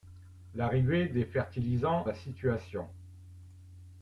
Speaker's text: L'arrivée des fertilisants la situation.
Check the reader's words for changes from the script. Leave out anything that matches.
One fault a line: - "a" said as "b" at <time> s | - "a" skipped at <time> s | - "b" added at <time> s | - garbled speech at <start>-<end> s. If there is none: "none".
none